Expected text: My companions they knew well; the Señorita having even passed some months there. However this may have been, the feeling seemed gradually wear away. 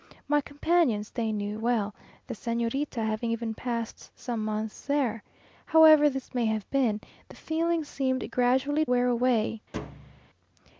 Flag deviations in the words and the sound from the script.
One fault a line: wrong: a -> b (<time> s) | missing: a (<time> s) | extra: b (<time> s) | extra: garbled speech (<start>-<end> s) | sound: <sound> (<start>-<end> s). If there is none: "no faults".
sound: thud (9.7-10.3 s)